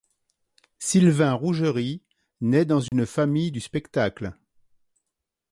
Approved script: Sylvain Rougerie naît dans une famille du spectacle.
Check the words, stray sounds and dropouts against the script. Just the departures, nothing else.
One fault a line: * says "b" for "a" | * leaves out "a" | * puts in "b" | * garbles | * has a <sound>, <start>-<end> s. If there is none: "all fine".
* has a dropout, 2.9-2.9 s